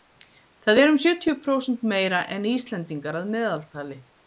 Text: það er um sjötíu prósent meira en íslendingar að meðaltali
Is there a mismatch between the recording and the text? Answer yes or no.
no